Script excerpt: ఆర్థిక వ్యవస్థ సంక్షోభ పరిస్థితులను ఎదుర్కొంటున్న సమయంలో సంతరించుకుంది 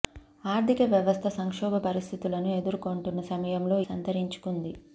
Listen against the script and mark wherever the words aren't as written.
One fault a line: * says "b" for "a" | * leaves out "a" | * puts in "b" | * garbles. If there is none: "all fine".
all fine